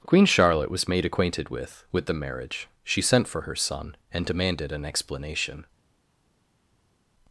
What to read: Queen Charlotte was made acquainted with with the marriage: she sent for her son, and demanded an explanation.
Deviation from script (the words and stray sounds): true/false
false